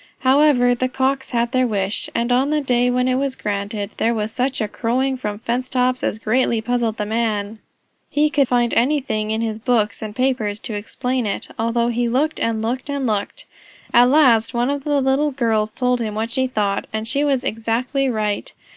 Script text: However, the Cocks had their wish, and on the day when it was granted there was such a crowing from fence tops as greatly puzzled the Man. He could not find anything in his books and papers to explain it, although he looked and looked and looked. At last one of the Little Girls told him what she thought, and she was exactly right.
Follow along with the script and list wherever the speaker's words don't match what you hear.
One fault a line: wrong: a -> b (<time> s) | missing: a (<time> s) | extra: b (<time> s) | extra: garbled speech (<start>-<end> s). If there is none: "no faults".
missing: not (8.5 s)